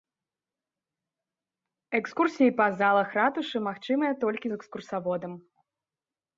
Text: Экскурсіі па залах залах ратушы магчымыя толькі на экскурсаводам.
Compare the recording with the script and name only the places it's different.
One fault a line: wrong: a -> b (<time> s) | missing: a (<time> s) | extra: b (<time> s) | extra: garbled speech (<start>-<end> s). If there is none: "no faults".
missing: залах (3.1 s)
wrong: на -> з (4.5 s)